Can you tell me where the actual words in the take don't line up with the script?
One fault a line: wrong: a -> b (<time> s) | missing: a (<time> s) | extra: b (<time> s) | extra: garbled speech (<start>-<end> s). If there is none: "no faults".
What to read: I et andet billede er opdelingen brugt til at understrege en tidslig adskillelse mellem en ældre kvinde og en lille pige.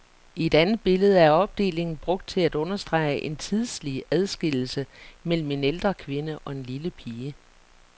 no faults